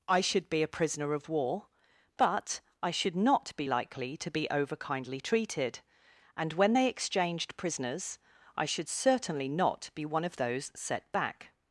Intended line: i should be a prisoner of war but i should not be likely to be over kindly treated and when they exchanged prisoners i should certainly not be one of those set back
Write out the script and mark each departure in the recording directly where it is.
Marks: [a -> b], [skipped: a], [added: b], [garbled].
i should be a prisoner of war but i should not be likely to be over kindly treated and when they exchanged prisoners i should certainly not be one of those set back